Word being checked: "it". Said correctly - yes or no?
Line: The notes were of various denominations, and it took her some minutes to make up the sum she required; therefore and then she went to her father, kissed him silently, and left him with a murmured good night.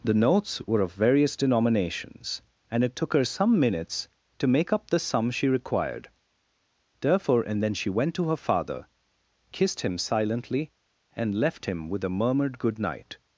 yes